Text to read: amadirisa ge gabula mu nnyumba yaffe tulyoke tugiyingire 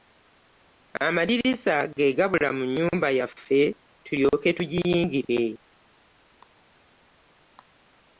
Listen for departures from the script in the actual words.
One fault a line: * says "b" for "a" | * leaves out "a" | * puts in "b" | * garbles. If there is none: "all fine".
all fine